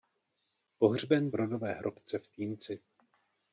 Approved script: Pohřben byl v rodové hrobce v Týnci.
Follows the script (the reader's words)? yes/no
no